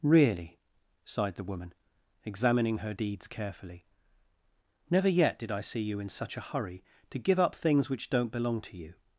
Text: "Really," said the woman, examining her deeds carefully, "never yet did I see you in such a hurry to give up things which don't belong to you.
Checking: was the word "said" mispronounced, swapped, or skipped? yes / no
yes